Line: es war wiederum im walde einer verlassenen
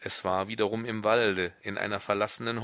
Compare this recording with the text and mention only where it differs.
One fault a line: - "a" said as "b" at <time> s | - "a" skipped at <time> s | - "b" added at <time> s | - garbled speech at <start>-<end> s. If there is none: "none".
- "in" added at 1.6 s